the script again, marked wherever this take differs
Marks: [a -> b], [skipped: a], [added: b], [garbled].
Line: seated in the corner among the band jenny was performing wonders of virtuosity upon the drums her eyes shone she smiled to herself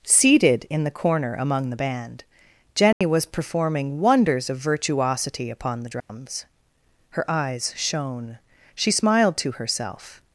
seated in the corner among the band jenny was performing wonders of virtuosity upon the drums her eyes shone she smiled to herself